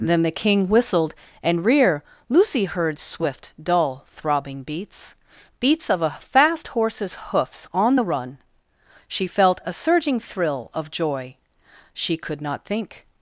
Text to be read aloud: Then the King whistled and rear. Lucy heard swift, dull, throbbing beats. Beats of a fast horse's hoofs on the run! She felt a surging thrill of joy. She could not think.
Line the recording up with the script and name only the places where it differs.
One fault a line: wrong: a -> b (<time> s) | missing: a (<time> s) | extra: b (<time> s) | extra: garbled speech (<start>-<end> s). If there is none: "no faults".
no faults